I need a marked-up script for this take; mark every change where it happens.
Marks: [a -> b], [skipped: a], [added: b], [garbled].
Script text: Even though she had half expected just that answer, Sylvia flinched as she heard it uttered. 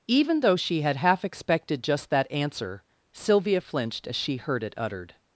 Even though she had half expected just that answer, Sylvia flinched as she heard it uttered.